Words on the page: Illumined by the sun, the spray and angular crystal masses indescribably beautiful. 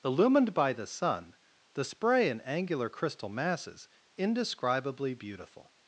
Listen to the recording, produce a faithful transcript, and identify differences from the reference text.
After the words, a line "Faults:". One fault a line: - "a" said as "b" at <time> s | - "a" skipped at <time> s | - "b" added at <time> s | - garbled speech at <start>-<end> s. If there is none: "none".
Illumined by the sun, the spray and angular crystal masses indescribably beautiful.
Faults:
none